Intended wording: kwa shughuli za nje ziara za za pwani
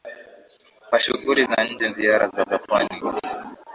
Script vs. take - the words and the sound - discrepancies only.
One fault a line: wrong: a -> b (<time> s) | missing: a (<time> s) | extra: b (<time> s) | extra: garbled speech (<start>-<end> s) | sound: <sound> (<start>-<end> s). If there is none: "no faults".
no faults